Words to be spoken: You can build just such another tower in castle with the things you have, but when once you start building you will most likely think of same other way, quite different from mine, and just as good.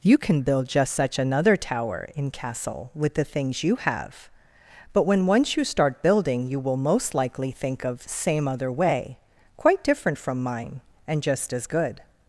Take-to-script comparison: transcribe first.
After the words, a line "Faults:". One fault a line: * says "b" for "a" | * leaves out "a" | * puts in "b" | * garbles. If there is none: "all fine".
You can build just such another tower in castle with the things you have, but when once you start building you will most likely think of same other way, quite different from mine, and just as good.
Faults:
all fine